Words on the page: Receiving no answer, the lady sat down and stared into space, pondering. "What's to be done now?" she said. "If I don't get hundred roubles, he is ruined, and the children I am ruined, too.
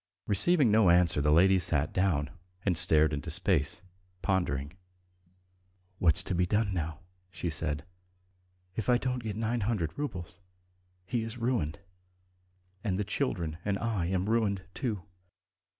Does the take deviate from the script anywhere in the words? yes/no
yes